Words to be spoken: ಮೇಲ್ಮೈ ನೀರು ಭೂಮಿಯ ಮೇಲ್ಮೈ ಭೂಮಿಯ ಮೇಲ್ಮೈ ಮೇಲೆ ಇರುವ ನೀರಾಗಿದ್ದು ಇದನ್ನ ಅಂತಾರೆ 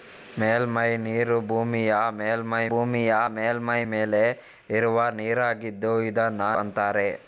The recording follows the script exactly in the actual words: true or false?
true